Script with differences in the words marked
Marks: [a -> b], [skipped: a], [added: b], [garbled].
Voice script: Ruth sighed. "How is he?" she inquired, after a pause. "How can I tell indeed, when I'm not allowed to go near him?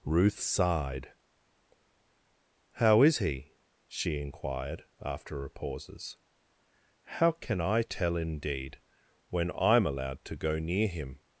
Ruth sighed. "How is he?" she inquired, after a [pause. -> pauses] "How can I tell indeed, when I'm [skipped: not] allowed to go near him?